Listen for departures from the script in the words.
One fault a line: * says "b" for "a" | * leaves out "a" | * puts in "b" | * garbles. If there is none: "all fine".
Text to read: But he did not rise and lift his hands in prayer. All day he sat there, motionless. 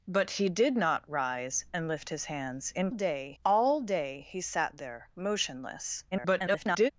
* says "day" for "prayer"
* garbles